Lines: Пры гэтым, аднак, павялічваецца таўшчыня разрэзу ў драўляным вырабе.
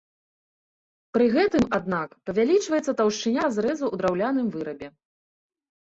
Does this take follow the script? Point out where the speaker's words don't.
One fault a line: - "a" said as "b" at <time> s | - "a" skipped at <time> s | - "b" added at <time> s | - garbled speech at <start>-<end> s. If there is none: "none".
none